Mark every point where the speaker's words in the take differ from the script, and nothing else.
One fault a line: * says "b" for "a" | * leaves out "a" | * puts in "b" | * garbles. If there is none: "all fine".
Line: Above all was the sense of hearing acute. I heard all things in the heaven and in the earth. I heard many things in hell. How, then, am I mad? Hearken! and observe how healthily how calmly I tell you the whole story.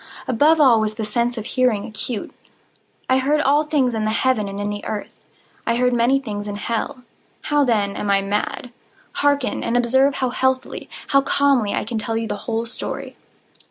* puts in "can"